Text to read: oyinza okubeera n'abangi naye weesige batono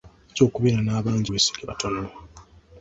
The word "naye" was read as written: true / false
false